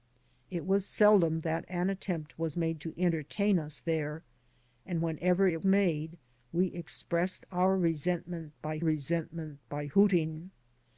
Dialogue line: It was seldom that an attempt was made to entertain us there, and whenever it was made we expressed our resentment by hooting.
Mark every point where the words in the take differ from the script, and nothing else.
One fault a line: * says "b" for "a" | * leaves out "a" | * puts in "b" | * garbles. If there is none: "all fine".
* leaves out "was"
* puts in "resentment by"